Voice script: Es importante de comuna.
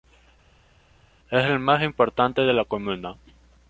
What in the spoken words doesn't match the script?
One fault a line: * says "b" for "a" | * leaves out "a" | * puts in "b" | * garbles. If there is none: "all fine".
* puts in "el más"
* puts in "la"